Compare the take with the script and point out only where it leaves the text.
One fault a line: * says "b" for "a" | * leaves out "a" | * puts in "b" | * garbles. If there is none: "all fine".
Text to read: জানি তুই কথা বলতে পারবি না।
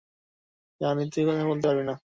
all fine